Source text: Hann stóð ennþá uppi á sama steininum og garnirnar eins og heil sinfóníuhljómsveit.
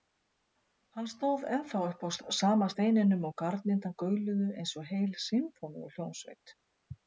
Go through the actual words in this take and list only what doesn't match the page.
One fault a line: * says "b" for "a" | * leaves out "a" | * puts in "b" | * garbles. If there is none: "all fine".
* puts in "gauluðu"